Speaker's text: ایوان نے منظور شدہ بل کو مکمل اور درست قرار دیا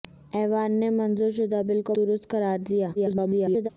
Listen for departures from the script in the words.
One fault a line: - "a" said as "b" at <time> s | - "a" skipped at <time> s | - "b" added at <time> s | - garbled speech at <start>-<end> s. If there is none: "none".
- "مکمل اور" skipped at 2.0 s
- garbled speech at 3.0-3.7 s